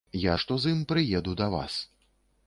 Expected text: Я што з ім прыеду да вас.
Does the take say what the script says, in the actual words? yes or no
yes